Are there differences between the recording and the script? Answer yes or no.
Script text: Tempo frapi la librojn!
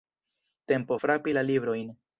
no